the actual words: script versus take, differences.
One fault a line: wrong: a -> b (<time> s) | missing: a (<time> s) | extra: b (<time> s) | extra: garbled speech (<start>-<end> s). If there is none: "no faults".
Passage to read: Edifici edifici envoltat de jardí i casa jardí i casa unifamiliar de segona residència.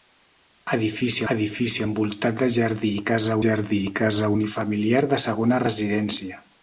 no faults